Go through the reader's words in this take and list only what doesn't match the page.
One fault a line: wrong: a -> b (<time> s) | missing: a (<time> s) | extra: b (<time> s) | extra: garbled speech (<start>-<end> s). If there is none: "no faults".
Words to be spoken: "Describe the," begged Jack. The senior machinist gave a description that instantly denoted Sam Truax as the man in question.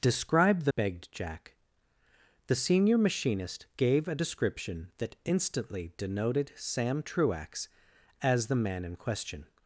no faults